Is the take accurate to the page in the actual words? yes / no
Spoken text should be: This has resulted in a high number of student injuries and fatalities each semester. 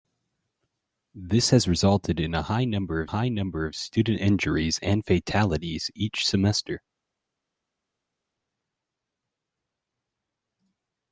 no